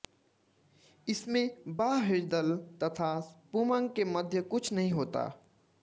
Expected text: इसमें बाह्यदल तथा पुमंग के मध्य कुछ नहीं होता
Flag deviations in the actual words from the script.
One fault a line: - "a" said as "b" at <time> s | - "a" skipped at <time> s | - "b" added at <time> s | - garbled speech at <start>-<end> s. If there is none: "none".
none